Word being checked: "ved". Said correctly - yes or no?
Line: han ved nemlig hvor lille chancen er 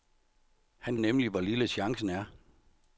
no